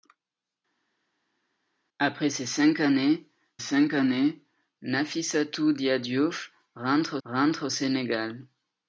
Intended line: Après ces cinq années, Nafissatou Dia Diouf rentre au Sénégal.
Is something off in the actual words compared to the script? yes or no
yes